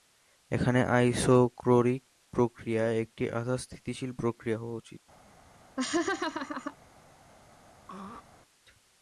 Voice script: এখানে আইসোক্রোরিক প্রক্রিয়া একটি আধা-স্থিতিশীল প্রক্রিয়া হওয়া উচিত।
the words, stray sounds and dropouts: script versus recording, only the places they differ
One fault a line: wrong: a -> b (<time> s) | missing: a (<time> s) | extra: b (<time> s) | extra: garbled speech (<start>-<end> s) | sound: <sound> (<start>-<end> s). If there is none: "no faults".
sound: laugh (5.8-6.8 s)
sound: throat clearing (7.9-8.2 s)